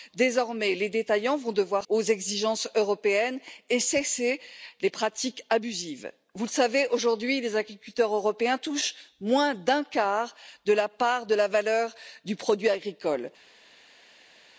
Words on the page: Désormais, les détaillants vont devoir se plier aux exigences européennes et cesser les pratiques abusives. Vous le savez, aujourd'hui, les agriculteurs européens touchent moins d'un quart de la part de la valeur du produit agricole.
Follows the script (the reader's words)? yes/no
no